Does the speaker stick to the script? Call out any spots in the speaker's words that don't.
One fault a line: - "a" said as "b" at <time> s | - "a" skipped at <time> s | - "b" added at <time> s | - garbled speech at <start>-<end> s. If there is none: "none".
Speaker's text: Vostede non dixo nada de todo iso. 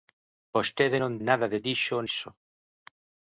- "dixo" skipped at 1.1 s
- "todo" said as "dixo" at 1.7 s